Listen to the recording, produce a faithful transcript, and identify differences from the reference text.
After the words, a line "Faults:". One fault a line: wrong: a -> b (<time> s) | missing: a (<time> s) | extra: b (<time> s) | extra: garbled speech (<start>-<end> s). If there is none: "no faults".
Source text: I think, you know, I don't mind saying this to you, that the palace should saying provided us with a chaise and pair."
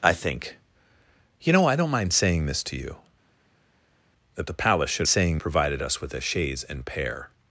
I think, you know, I don't mind saying this to you, that the palace should saying provided us with a chaise and pair."
Faults:
no faults